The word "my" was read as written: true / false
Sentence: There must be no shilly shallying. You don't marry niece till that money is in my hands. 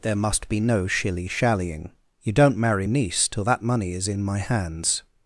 true